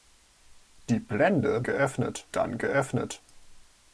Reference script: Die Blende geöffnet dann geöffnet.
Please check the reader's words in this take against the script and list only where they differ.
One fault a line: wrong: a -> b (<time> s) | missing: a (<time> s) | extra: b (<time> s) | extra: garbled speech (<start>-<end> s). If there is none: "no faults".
no faults